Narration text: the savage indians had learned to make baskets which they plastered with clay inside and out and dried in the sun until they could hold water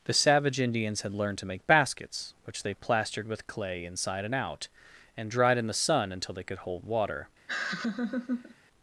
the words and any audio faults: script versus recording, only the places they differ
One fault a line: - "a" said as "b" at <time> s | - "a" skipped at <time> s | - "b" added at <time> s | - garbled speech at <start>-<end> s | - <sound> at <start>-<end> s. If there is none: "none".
- laugh at 7.5-8.5 s